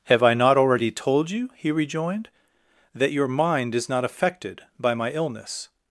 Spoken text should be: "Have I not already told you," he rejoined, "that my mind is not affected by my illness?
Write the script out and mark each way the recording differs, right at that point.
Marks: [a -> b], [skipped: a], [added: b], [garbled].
"Have I not already told you," he rejoined, "that [my -> your] mind is not affected by my illness?